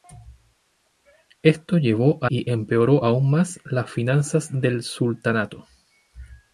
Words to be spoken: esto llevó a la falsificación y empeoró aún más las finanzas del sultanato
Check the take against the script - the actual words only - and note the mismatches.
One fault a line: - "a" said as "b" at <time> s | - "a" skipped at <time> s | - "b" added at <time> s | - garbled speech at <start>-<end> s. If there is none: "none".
- "la falsificación" skipped at 2.3 s